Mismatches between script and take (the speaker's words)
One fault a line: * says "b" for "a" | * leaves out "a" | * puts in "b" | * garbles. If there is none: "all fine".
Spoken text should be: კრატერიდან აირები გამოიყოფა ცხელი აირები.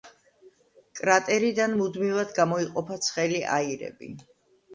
* says "მუდმივად" for "აირები"